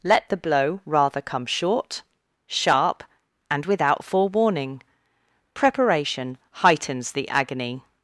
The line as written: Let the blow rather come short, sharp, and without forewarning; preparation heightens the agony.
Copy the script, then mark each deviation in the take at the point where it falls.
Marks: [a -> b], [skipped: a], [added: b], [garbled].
Let the blow rather come short, sharp, and without forewarning; preparation heightens the agony.